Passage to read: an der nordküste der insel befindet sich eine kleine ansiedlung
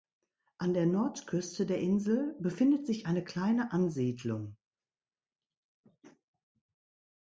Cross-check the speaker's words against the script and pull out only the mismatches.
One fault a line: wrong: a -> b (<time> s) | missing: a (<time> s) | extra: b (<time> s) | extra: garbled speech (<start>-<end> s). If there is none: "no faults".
no faults